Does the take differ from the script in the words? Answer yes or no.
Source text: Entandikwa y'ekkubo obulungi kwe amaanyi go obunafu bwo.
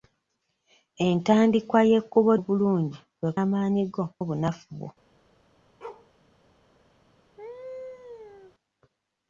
no